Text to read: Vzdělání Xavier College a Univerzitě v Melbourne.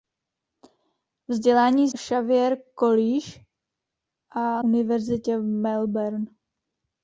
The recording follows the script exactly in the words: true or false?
true